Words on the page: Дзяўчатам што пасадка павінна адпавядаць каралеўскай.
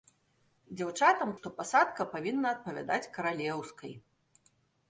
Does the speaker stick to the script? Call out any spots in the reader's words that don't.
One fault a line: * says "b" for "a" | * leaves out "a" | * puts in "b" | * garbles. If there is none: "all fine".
all fine